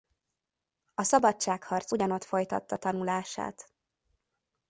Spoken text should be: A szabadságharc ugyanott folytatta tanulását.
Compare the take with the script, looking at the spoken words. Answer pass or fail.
pass